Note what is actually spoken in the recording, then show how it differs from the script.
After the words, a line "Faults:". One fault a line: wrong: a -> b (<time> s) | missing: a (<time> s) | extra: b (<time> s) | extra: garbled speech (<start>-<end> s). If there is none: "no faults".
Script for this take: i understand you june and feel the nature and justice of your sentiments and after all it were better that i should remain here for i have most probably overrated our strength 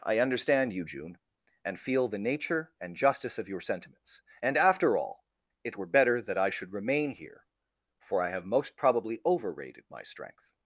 i understand you june and feel the nature and justice of your sentiments and after all it were better that i should remain here for i have most probably overrated my strength
Faults:
wrong: our -> my (9.9 s)